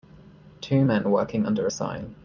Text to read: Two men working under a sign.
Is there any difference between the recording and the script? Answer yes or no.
no